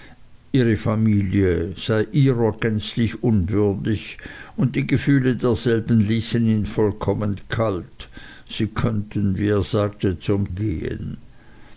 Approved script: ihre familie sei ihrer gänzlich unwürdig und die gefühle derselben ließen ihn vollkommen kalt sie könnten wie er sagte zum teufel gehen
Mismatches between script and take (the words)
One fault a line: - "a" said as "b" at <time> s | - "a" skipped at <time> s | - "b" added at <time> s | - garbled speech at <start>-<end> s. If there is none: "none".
- "teufel" skipped at 10.5 s